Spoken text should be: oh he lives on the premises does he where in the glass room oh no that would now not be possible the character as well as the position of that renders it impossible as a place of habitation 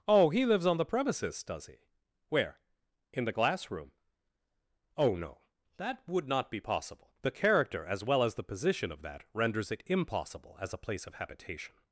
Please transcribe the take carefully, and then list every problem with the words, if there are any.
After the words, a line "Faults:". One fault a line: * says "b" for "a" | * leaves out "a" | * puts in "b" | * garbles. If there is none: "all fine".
oh he lives on the premises does he where in the glass room oh no that would not be possible the character as well as the position of that renders it impossible as a place of habitation
Faults:
* leaves out "now"